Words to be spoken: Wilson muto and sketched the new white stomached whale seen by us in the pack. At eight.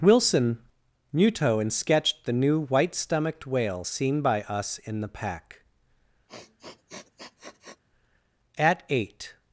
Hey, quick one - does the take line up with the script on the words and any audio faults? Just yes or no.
no